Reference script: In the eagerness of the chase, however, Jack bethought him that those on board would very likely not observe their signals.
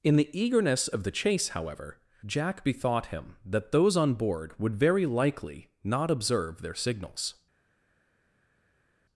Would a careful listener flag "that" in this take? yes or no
no